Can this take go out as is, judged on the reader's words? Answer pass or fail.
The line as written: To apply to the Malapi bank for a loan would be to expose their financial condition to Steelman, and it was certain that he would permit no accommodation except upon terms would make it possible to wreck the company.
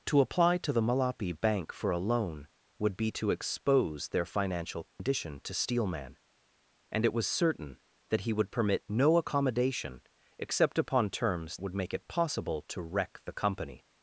pass